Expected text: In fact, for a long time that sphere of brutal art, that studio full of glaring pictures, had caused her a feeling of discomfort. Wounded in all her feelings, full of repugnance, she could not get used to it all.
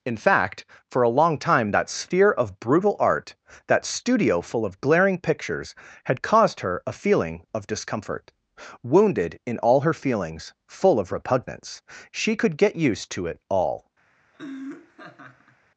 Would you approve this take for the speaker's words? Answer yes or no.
no